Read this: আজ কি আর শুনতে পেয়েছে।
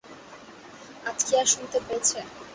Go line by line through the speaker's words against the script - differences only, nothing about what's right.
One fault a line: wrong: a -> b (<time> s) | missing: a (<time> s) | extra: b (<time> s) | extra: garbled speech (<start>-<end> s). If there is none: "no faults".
no faults